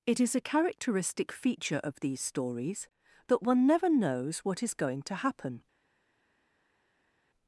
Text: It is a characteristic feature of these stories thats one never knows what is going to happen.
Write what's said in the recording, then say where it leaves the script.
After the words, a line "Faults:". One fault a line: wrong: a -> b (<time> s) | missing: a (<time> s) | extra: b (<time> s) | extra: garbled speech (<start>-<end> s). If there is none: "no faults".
It is a characteristic feature of these stories that one never knows what is going to happen.
Faults:
wrong: thats -> that (3.3 s)